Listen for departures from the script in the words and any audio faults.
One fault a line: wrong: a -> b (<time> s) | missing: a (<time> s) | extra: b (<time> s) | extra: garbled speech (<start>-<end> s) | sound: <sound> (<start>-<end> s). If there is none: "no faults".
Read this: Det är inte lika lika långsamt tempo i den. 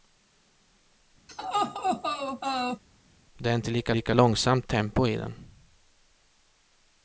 sound: laugh (1.3-2.8 s)